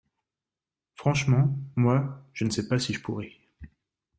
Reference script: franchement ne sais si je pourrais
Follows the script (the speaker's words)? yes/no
no